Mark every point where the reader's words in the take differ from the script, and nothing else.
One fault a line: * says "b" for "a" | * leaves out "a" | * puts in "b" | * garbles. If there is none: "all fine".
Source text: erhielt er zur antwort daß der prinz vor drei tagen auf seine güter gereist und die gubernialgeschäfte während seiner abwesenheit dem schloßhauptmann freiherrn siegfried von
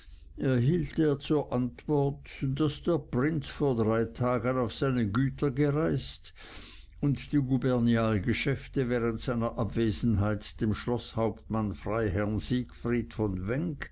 all fine